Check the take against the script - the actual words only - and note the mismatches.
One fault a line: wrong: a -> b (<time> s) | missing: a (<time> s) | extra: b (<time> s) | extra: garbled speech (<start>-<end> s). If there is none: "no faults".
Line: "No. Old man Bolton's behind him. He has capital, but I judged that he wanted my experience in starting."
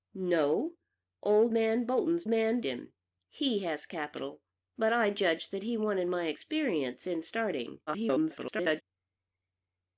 wrong: behind -> man (2.3 s)
extra: garbled speech (7.9-8.8 s)